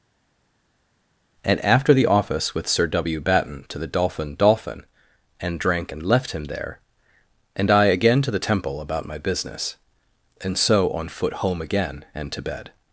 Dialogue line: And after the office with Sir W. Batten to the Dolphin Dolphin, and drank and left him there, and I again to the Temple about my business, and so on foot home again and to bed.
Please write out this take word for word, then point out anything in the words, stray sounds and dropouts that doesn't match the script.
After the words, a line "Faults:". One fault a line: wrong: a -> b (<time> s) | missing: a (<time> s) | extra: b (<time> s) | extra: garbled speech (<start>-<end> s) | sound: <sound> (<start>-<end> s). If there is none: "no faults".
And after the office with Sir W. Batten to the Dolphin Dolphin, and drank and left him there, and I again to the Temple about my business, and so on foot home again and to bed.
Faults:
no faults